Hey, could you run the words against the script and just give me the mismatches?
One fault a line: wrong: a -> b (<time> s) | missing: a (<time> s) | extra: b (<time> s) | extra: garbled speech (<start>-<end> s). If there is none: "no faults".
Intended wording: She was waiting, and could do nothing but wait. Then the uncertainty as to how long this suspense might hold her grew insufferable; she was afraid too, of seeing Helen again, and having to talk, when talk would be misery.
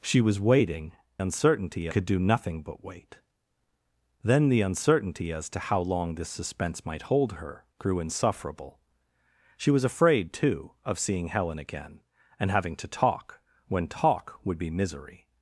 wrong: and -> uncertainty (1.2 s)